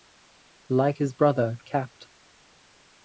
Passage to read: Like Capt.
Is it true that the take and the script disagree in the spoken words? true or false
true